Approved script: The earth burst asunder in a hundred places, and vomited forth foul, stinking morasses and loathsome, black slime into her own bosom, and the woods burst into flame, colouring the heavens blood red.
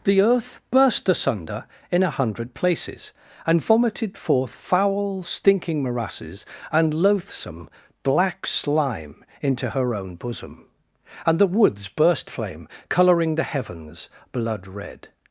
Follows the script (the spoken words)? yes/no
no